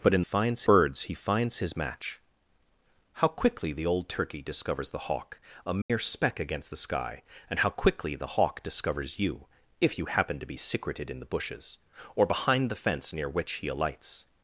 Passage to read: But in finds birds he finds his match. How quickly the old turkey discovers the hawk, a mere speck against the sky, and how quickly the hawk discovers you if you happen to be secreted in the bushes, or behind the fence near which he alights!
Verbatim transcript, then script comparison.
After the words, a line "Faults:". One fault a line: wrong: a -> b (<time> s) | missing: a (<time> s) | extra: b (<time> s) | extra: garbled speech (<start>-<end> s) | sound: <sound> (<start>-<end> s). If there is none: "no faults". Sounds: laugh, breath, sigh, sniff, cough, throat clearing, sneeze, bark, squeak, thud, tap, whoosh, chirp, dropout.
But in finds birds he finds his match. How quickly the old turkey discovers the hawk, a mere speck against the sky, and how quickly the hawk discovers you if you happen to be secreted in the bushes, or behind the fence near which he alights!
Faults:
sound: dropout (5.8-5.9 s)